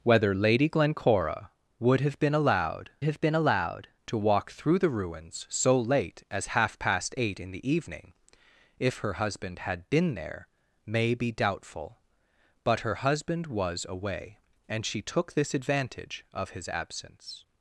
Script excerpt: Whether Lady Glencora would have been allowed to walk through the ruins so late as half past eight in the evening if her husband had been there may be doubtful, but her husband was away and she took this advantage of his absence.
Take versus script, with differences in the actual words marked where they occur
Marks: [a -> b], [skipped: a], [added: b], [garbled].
Whether Lady Glencora would have been allowed [added: have been allowed] to walk through the ruins so late as half past eight in the evening if her husband had been there may be doubtful, but her husband was away and she took this advantage of his absence.